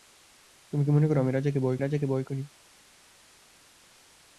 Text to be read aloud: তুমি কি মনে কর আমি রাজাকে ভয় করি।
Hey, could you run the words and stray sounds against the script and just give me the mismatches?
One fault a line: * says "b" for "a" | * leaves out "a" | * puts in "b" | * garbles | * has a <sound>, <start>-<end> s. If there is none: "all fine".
* puts in "রাজাকে ভয়"